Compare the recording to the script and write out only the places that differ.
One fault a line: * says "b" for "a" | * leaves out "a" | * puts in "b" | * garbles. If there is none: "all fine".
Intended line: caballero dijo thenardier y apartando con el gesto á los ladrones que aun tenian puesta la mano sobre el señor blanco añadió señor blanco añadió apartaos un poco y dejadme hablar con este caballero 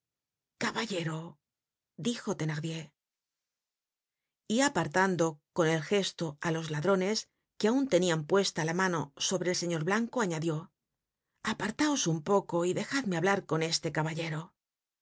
* leaves out "señor blanco añadió"